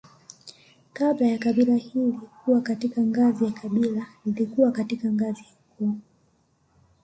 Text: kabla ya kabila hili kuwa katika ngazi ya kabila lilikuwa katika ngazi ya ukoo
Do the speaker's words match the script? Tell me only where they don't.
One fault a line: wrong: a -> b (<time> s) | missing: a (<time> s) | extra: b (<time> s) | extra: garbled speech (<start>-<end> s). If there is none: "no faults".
no faults